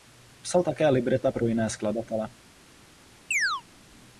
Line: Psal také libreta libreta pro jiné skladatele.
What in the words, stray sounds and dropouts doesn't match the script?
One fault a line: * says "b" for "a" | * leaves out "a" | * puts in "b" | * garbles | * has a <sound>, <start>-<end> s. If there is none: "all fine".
* leaves out "libreta"
* has a chirp, 3.3-3.6 s